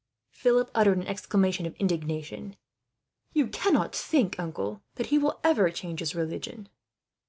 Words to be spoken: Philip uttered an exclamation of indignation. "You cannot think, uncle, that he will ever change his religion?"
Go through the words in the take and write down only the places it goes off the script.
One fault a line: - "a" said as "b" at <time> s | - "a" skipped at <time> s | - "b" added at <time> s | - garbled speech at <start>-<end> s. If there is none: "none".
none